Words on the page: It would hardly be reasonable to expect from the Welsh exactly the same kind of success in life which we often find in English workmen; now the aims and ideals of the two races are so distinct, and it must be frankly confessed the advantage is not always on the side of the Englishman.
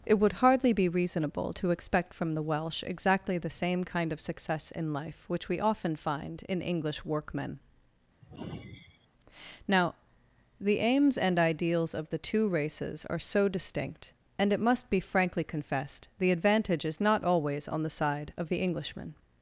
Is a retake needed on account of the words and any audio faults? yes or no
yes